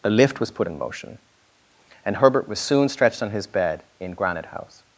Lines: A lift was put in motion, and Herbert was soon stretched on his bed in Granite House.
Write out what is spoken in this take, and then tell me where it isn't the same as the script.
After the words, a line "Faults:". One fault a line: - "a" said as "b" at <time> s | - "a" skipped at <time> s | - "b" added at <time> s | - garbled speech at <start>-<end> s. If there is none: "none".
A lift was put in motion, and Herbert was soon stretched on his bed in Granite House.
Faults:
none